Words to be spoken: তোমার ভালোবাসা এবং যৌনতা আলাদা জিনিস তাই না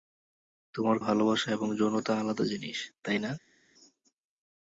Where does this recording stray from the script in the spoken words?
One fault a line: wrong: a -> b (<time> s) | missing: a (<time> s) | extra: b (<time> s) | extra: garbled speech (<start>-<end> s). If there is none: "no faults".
no faults